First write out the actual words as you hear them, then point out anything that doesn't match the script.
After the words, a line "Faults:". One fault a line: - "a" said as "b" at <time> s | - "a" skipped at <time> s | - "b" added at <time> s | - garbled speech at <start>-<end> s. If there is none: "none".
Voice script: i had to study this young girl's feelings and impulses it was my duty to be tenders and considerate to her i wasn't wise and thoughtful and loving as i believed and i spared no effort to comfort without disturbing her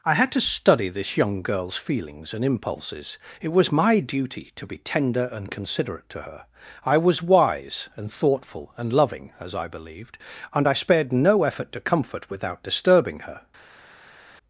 i had to study this young girl's feelings and impulses it was my duty to be tender and considerate to her i was wise and thoughtful and loving as i believed and i spared no effort to comfort without disturbing her
Faults:
- "tenders" said as "tender" at 4.8 s
- "wasn't" said as "was" at 7.0 s